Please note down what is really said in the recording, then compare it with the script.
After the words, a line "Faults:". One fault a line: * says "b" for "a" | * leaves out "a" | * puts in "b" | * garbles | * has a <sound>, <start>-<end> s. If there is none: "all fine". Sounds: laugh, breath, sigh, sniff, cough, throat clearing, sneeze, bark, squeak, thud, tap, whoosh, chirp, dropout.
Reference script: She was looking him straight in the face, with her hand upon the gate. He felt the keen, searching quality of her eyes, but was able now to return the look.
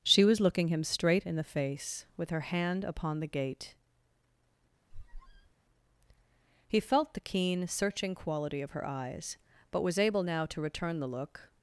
She was looking him straight in the face, with her hand upon the gate. He felt the keen, searching quality of her eyes, but was able now to return the look.
Faults:
* has a squeak, 4.9-5.5 s